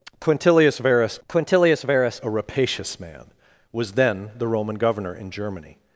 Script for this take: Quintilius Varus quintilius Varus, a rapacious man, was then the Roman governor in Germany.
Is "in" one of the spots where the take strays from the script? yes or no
no